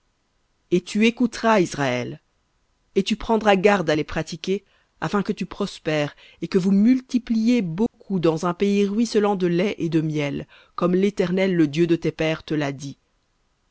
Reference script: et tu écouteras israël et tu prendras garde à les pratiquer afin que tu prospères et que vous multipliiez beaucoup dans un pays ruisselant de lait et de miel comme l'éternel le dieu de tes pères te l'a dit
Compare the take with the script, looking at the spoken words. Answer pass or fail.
pass